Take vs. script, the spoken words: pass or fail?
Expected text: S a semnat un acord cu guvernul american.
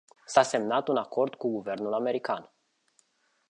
pass